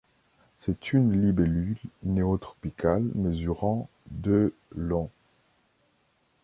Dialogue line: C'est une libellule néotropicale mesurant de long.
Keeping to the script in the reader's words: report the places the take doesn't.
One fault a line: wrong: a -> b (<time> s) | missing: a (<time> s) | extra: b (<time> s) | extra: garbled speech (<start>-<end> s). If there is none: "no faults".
no faults